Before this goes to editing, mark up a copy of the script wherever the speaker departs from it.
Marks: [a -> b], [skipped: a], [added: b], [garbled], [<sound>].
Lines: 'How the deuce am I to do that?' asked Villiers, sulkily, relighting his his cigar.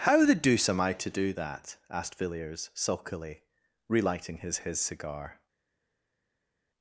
'How the deuce am I to do that?' asked Villiers, sulkily, relighting his his cigar.